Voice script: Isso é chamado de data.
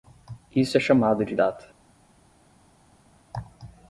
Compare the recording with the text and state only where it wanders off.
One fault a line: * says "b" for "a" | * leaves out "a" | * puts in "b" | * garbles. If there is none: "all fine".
all fine